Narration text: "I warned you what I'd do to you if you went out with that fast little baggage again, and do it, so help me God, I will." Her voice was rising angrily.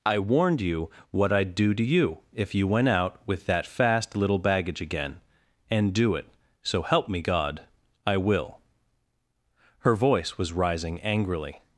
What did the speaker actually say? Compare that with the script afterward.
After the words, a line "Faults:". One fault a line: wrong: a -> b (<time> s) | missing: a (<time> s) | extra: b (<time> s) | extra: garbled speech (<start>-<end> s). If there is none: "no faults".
"I warned you what I'd do to you if you went out with that fast little baggage again, and do it, so help me God, I will." Her voice was rising angrily.
Faults:
no faults